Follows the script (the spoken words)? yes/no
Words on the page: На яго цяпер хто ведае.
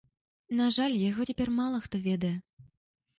no